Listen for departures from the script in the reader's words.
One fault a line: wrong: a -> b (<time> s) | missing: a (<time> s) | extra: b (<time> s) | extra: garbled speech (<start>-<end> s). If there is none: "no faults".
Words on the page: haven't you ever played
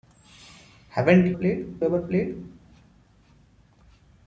wrong: you -> played (1.3 s)